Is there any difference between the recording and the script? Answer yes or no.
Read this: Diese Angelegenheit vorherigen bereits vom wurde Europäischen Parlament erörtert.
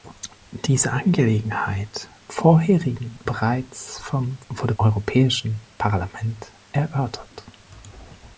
no